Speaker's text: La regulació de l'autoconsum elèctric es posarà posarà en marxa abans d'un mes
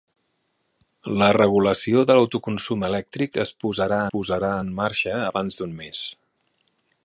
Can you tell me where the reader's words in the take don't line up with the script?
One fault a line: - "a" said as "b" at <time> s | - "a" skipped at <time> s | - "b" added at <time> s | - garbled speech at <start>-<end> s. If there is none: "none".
none